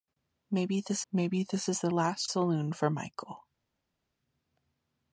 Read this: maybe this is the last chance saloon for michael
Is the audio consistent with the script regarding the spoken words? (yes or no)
no